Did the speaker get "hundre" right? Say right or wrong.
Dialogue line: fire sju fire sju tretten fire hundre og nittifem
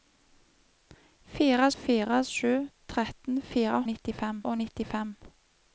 wrong